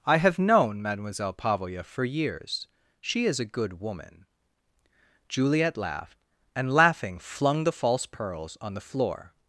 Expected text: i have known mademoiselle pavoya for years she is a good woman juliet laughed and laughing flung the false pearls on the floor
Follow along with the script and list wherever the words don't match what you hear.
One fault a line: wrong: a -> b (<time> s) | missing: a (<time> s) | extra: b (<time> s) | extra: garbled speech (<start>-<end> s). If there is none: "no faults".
no faults